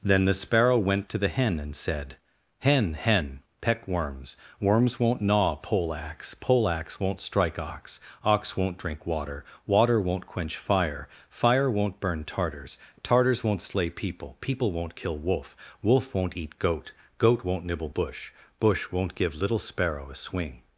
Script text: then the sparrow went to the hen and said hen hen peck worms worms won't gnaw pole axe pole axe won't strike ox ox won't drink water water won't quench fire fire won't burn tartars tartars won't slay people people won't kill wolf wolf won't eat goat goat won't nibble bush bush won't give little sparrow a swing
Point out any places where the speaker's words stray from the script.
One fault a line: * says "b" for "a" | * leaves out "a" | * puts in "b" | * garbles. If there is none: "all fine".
all fine